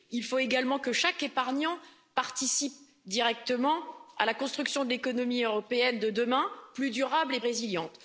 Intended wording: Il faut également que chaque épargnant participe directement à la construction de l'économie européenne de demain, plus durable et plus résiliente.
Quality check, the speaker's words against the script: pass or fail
fail